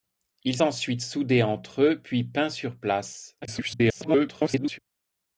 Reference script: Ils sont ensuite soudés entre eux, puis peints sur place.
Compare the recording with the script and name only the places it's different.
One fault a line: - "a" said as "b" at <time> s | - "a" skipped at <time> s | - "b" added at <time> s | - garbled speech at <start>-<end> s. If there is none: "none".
- "sont" skipped at 0.6 s
- garbled speech at 3.4-4.8 s